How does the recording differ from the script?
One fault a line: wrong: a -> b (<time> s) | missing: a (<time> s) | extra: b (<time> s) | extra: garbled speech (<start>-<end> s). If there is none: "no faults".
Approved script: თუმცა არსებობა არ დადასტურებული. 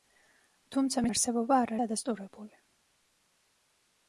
no faults